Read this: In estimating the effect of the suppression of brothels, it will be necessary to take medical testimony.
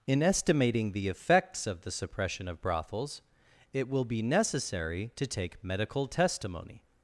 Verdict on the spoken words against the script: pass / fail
fail